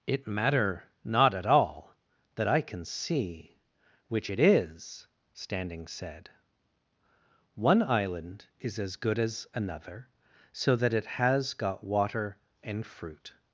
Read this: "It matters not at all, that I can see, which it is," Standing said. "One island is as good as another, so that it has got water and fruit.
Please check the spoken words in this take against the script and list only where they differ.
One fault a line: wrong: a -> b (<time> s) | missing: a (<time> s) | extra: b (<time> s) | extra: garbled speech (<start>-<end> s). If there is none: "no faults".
wrong: matters -> matter (0.2 s)